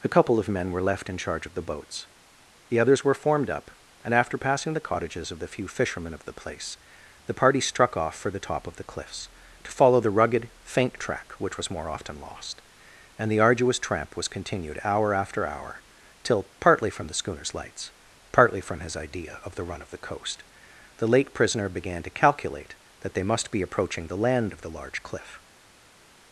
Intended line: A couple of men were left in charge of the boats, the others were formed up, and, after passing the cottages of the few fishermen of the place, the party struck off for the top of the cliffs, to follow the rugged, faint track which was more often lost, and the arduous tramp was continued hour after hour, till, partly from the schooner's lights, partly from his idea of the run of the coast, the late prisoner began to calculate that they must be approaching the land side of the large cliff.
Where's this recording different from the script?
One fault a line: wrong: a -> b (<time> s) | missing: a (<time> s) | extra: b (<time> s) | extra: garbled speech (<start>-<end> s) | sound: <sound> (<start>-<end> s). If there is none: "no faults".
missing: side (24.5 s)